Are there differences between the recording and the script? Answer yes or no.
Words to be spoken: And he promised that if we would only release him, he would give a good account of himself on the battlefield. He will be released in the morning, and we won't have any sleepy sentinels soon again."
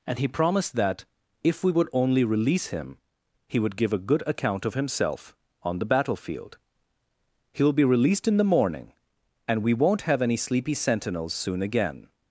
no